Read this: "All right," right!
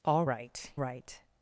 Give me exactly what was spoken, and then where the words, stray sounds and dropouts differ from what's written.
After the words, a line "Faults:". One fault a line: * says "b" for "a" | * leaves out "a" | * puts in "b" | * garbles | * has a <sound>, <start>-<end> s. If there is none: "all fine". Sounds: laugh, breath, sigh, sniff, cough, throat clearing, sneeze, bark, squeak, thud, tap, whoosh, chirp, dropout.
"All right," right!
Faults:
all fine